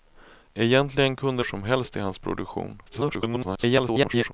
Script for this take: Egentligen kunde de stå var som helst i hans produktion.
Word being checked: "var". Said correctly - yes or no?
no